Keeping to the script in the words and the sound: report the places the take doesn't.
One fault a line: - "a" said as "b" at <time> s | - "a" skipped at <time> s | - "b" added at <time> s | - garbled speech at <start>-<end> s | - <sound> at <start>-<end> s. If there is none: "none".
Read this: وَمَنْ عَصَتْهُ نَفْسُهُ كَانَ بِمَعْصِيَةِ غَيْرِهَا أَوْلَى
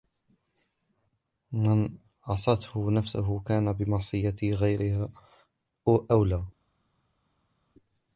none